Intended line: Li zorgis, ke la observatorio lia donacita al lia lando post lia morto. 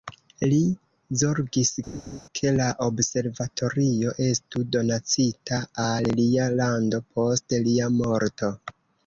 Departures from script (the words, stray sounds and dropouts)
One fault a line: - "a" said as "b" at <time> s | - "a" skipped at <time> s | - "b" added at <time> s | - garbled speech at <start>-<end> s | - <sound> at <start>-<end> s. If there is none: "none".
- laugh at 1.9-2.2 s
- "lia" said as "estu" at 4.3 s